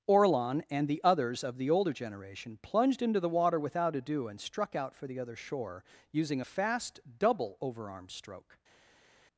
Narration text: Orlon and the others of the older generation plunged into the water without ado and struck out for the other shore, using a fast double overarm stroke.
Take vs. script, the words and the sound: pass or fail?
pass